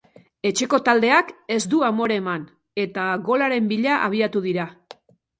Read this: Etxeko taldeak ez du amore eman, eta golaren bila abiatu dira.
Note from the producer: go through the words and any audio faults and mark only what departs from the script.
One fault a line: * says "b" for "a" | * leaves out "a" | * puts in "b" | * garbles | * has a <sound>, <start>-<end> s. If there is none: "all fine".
all fine